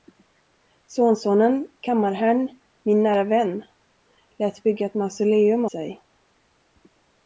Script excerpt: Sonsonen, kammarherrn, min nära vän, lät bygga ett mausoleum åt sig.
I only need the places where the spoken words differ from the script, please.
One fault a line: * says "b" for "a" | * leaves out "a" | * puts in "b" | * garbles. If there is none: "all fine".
* leaves out "åt"